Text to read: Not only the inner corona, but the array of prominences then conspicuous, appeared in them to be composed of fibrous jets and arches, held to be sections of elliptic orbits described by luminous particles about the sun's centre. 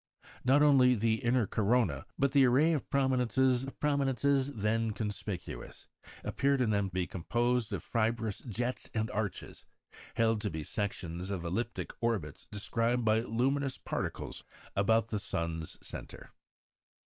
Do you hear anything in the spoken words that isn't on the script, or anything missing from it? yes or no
yes